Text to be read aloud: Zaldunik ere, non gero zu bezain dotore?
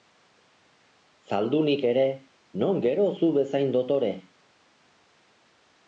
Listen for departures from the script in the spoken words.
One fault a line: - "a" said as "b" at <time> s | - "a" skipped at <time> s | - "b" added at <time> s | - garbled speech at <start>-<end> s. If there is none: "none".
none